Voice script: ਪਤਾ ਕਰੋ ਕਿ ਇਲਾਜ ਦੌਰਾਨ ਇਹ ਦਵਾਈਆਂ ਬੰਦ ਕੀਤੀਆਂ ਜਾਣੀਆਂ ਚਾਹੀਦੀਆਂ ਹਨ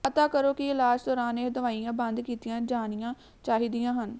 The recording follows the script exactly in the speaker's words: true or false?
true